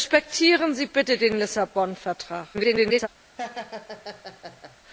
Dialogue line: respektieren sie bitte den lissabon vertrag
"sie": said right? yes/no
yes